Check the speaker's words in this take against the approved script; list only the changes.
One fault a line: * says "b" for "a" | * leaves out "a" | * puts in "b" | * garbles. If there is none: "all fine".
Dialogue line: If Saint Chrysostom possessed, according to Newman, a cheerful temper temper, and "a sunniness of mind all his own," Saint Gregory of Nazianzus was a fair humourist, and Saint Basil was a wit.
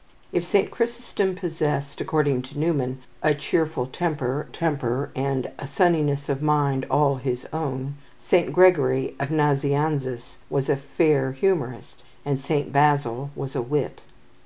all fine